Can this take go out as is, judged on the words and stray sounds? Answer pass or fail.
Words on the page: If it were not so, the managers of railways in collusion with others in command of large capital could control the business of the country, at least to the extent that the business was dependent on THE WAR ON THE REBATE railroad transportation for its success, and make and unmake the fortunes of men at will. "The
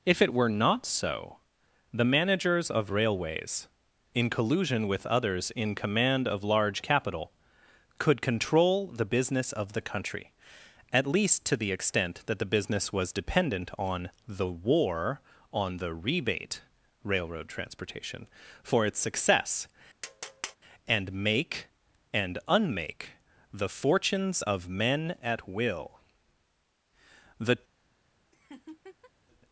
fail